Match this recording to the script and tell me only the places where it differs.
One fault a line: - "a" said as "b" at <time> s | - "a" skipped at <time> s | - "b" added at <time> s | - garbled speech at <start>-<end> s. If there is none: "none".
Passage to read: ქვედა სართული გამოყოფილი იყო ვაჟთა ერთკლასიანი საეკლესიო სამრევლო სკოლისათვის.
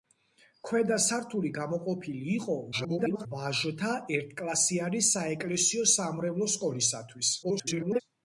- garbled speech at 2.7-3.3 s
- garbled speech at 7.4-8.0 s